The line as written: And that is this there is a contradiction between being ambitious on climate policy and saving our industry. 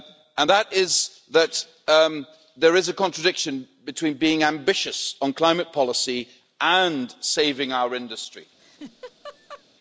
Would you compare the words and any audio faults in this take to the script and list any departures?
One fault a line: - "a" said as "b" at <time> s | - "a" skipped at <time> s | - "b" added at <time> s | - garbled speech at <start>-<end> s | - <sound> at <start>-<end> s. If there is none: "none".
- "this" said as "that" at 1.3 s
- laugh at 8.6-9.6 s